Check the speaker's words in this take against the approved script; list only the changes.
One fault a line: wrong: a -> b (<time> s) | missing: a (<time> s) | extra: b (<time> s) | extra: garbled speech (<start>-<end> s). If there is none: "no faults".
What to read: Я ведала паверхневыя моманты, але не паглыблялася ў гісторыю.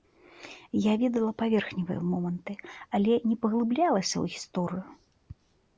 no faults